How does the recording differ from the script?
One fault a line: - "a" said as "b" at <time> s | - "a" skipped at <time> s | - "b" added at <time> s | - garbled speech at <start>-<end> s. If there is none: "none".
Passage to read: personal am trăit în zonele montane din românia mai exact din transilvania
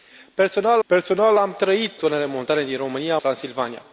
- "personal" added at 0.8 s
- "în" skipped at 2.0 s
- "mai exact din" skipped at 3.2 s